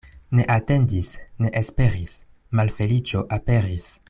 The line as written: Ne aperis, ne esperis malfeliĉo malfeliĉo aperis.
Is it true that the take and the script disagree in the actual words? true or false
true